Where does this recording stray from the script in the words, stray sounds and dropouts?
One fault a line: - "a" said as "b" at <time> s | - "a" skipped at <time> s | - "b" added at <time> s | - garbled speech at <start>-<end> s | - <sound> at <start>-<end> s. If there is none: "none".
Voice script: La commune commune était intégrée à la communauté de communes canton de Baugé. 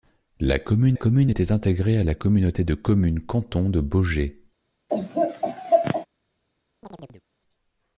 - laugh at 4.9-6.1 s
- chirp at 6.8-7.2 s